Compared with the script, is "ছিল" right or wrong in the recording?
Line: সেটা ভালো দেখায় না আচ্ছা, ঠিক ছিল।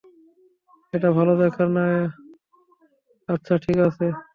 wrong